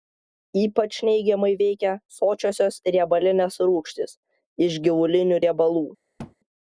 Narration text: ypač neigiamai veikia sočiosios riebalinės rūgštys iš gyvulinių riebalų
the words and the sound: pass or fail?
fail